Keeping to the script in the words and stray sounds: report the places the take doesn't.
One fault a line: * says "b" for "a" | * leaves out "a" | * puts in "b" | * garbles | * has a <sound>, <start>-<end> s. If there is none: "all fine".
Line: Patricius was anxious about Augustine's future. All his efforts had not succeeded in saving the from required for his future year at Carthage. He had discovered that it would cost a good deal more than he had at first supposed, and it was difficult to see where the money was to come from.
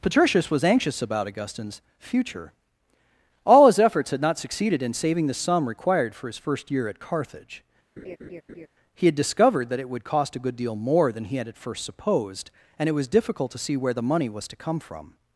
* says "sum" for "from"
* says "first" for "future"
* has a laugh, 8.0-8.7 s